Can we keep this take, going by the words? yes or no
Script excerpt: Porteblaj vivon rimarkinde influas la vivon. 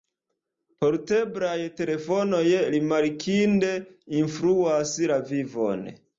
no